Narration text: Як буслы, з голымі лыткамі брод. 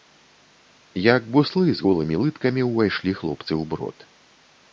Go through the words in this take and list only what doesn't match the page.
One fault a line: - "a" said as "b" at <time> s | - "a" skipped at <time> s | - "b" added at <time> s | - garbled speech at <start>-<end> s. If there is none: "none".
- "ўвайшлі хлопцы ў" added at 2.7 s